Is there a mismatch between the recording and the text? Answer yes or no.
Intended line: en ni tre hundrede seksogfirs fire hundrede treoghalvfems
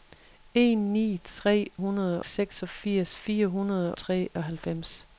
no